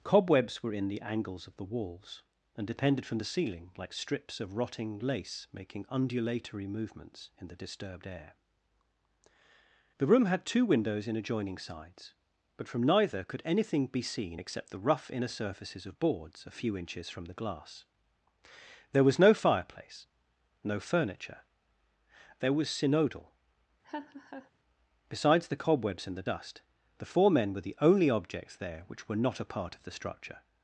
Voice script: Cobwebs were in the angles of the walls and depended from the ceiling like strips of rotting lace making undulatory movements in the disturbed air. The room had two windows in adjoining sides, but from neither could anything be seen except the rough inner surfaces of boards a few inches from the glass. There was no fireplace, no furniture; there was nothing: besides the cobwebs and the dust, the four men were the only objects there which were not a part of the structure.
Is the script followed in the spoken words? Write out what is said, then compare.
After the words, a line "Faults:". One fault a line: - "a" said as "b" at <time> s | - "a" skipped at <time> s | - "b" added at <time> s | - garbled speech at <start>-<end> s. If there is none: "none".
Cobwebs were in the angles of the walls and depended from the ceiling like strips of rotting lace making undulatory movements in the disturbed air. The room had two windows in adjoining sides, but from neither could anything be seen except the rough inner surfaces of boards a few inches from the glass. There was no fireplace, no furniture; there was synodal: besides the cobwebs and the dust, the four men were the only objects there which were not a part of the structure.
Faults:
- "nothing" said as "synodal" at 22.7 s